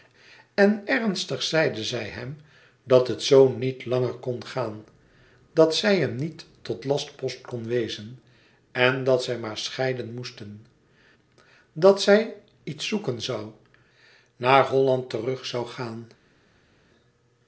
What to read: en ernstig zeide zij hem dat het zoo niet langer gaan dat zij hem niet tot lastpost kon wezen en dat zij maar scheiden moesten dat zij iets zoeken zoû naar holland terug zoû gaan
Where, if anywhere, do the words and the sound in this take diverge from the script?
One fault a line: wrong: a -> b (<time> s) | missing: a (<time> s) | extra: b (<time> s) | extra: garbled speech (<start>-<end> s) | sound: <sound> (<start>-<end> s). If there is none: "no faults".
extra: kon (4.1 s)